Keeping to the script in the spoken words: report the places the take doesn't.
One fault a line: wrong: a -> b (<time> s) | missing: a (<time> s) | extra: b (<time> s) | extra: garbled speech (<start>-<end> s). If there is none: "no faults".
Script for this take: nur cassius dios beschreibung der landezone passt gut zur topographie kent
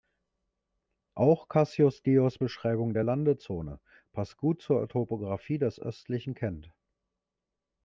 wrong: nur -> auch (1.1 s)
extra: des östlichen (5.6 s)